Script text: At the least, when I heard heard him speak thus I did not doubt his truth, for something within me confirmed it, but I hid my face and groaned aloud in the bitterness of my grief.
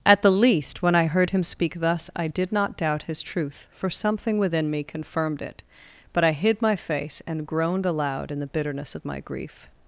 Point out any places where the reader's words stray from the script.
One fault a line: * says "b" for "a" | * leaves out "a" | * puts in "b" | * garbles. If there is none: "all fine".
* leaves out "heard"